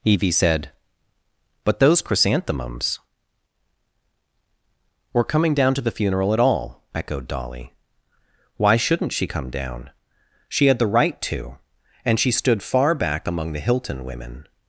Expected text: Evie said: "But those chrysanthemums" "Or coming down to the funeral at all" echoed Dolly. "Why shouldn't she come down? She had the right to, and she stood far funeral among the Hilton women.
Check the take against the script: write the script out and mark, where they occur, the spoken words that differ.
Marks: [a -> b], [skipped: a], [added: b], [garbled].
Evie said: "But those chrysanthemums" "Or coming down to the funeral at all" echoed Dolly. "Why shouldn't she come down? She had the right to, and she stood far [funeral -> back] among the Hilton women.